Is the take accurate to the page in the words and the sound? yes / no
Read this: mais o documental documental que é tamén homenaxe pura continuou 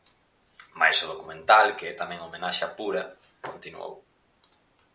no